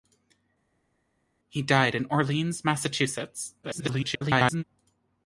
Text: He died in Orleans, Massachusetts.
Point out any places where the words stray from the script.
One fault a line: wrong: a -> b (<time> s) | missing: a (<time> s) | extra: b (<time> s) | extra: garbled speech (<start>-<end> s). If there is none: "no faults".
extra: garbled speech (3.6-4.6 s)